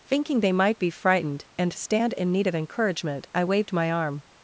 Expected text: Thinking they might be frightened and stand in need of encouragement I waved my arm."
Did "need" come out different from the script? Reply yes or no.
no